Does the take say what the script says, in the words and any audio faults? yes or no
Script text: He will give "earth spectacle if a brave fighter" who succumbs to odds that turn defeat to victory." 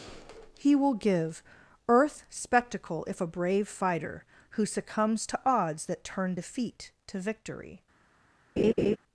no